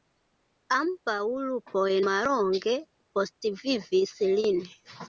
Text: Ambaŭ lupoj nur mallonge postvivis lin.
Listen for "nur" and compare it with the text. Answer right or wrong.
wrong